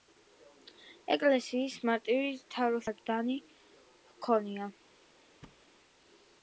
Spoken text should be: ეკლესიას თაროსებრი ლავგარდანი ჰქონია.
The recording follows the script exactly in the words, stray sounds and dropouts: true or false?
false